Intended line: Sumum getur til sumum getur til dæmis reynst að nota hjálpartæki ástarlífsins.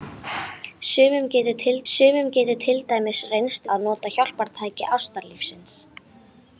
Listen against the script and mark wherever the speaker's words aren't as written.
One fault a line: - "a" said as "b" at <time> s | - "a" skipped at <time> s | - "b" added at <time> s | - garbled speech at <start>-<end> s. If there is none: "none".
none